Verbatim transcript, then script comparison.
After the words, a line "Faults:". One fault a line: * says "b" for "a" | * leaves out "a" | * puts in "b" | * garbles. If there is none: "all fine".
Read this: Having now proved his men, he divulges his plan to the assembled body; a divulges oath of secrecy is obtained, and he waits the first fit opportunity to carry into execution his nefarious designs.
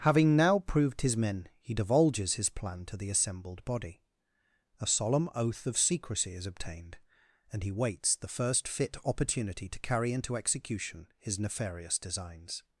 Having now proved his men, he divulges his plan to the assembled body; a solemn oath of secrecy is obtained, and he waits the first fit opportunity to carry into execution his nefarious designs.
Faults:
* says "solemn" for "divulges"